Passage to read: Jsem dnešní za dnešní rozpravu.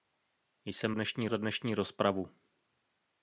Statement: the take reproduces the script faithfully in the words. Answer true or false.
true